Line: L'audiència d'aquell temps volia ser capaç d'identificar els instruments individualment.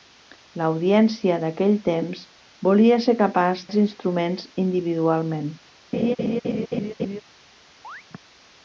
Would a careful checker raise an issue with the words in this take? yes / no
yes